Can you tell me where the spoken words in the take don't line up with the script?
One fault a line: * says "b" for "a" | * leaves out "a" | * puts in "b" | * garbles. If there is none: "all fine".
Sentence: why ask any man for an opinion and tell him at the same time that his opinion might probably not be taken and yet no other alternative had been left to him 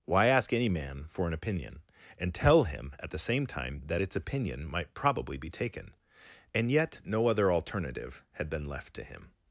* says "its" for "his"
* leaves out "not"